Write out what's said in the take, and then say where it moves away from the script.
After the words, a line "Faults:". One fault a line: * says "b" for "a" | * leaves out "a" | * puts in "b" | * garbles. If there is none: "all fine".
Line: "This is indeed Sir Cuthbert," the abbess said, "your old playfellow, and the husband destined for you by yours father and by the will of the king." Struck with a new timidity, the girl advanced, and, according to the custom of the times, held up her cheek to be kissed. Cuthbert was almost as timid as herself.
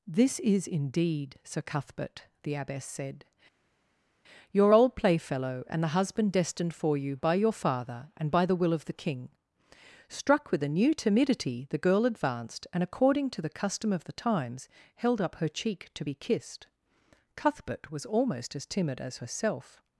"This is indeed Sir Cuthbert," the abbess said, "your old playfellow, and the husband destined for you by your father and by the will of the king." Struck with a new timidity, the girl advanced, and, according to the custom of the times, held up her cheek to be kissed. Cuthbert was almost as timid as herself.
Faults:
* says "your" for "yours"